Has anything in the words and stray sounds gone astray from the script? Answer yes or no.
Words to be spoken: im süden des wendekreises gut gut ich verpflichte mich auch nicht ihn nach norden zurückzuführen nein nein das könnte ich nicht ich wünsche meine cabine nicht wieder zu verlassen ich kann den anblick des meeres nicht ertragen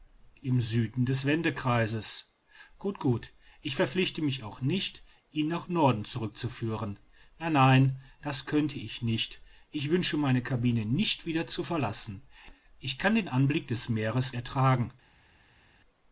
yes